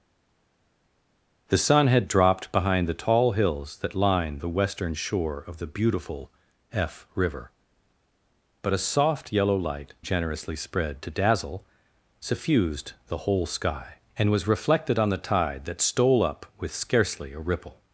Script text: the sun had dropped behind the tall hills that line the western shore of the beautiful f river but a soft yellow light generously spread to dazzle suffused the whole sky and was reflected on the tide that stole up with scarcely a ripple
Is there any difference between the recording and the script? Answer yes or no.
no